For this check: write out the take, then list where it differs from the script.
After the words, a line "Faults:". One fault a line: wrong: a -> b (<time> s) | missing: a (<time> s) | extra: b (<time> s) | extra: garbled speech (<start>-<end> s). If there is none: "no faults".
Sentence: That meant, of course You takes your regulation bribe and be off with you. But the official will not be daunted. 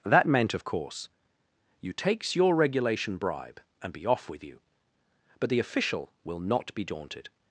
That meant, of course You takes your regulation bribe and be off with you. But the official will not be daunted.
Faults:
no faults